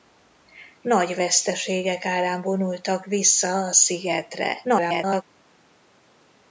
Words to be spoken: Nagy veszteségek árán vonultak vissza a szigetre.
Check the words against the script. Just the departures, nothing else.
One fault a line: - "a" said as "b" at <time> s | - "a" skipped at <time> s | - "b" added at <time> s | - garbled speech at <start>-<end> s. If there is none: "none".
- garbled speech at 4.6-5.2 s